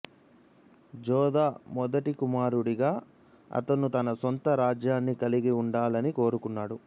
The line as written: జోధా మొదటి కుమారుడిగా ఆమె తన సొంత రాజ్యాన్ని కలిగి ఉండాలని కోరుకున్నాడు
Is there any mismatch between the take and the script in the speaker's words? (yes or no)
yes